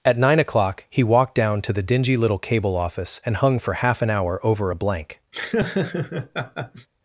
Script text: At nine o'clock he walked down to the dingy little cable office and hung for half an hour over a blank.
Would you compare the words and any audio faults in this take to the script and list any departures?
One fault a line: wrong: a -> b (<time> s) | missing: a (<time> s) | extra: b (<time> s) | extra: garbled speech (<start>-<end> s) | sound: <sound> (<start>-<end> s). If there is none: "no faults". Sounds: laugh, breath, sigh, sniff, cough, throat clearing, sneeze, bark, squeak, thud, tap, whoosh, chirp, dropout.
sound: laugh (5.3-6.9 s)